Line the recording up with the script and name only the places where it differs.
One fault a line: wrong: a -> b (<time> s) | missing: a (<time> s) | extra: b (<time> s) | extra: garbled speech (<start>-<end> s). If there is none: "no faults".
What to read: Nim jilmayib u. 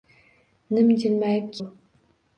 no faults